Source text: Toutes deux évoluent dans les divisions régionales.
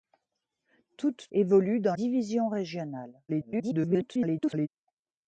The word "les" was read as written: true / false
false